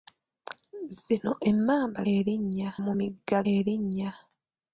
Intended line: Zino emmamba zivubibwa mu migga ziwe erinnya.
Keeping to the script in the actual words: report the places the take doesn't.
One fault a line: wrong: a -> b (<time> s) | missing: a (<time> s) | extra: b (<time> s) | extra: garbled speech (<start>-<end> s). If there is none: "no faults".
wrong: zivubibwa -> erinnya (2.1 s)
missing: ziwe (3.4 s)